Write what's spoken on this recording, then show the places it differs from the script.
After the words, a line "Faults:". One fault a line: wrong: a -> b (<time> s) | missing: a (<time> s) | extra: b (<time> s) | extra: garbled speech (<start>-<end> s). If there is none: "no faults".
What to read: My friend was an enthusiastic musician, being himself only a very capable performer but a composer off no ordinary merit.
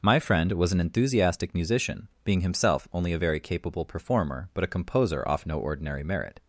My friend was an enthusiastic musician, being himself only a very capable performer but a composer off no ordinary merit.
Faults:
no faults